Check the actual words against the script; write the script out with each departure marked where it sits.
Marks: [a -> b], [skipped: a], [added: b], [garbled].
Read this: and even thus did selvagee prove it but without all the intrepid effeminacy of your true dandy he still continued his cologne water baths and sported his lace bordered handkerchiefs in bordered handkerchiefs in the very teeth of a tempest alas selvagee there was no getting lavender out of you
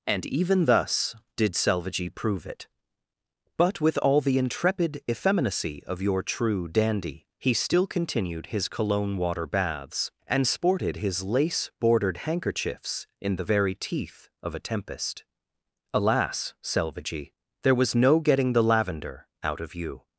and even thus did selvagee prove it but [without -> with] all the intrepid effeminacy of your true dandy he still continued his cologne water baths and sported his lace bordered handkerchiefs in [skipped: bordered handkerchiefs in] the very teeth of a tempest alas selvagee there was no getting [added: the] lavender out of you